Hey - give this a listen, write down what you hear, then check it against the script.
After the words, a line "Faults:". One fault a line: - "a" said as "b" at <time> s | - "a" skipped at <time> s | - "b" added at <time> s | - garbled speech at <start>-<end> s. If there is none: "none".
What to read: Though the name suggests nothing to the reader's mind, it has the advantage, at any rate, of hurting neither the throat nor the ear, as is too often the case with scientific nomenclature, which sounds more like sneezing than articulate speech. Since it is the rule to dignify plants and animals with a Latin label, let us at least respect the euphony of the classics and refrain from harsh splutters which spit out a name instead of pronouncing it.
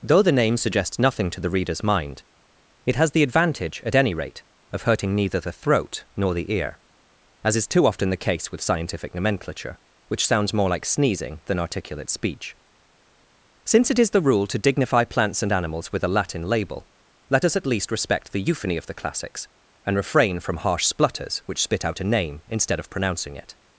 Though the name suggests nothing to the reader's mind, it has the advantage, at any rate, of hurting neither the throat nor the ear, as is too often the case with scientific nomenclature, which sounds more like sneezing than articulate speech. Since it is the rule to dignify plants and animals with a Latin label, let us at least respect the euphony of the classics and refrain from harsh splutters which spit out a name instead of pronouncing it.
Faults:
none